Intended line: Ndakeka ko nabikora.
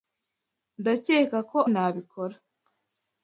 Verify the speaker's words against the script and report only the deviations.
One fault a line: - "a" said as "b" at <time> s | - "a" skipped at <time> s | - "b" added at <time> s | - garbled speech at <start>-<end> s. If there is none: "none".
none